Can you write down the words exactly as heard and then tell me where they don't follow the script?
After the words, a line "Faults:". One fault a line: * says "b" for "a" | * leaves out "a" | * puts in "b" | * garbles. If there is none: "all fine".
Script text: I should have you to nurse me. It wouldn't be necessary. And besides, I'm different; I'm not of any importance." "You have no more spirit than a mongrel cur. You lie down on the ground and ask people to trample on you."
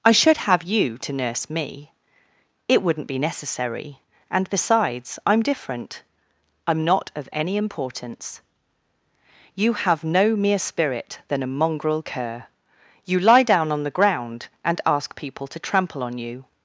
I should have you to nurse me. It wouldn't be necessary. And besides, I'm different; I'm not of any importance." "You have no mere spirit than a mongrel cur. You lie down on the ground and ask people to trample on you."
Faults:
* says "mere" for "more"